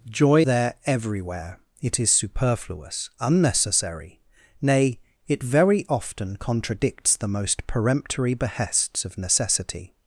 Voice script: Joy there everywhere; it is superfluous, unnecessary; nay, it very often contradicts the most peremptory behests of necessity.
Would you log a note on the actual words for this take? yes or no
no